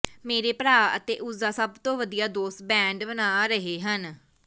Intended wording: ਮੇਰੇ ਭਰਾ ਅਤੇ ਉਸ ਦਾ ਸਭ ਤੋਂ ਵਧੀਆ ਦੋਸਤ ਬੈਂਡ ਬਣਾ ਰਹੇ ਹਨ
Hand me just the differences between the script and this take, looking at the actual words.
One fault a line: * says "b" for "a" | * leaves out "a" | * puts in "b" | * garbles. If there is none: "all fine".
all fine